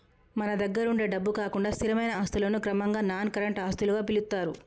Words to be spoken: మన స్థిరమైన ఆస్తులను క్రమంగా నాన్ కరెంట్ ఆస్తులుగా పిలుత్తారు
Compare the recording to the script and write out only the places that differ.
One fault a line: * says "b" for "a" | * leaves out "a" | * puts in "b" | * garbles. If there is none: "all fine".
* puts in "దగ్గరుండే డబ్బు కాకుండా"